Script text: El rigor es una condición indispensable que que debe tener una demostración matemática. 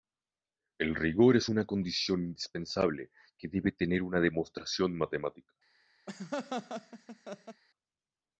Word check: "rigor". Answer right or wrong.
right